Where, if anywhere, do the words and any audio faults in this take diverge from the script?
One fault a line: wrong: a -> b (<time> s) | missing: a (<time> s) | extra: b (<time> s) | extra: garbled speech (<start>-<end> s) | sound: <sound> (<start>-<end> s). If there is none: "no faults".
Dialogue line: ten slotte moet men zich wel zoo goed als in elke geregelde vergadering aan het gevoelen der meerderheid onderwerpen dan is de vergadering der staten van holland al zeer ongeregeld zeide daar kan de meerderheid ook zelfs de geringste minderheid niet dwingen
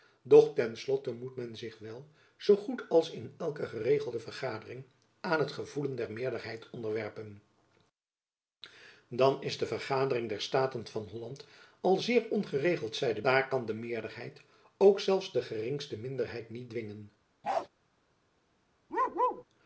sound: bark (17.4-17.7 s)
sound: bark (18.9-19.4 s)